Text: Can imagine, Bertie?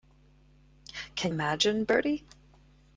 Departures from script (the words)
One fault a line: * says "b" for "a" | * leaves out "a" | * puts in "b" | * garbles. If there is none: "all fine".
all fine